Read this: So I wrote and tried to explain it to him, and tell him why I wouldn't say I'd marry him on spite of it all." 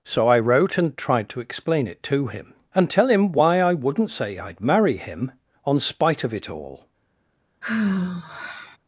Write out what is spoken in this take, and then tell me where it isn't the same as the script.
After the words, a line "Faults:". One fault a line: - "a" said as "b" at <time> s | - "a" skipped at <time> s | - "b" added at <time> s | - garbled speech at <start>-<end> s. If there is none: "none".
So I wrote and tried to explain it to him, and tell him why I wouldn't say I'd marry him on spite of it all."
Faults:
none